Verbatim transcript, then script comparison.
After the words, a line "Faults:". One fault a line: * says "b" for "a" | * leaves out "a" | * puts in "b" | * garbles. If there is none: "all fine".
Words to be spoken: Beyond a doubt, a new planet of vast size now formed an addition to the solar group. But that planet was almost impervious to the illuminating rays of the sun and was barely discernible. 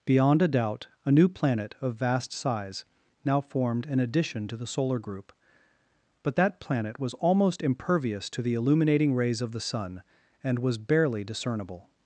Beyond a doubt, a new planet of vast size now formed an addition to the solar group. But that planet was almost impervious to the illuminating rays of the sun and was barely discernible.
Faults:
all fine